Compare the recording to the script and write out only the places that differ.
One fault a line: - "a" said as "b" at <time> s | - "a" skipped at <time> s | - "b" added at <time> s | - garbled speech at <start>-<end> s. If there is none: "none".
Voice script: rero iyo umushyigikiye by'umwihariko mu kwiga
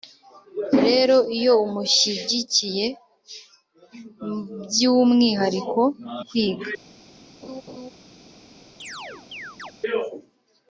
- "mu" skipped at 5.8 s